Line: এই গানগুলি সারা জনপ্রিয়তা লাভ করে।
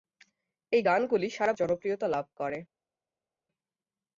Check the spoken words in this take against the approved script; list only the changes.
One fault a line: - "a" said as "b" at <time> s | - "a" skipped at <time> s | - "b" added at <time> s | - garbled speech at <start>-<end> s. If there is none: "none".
none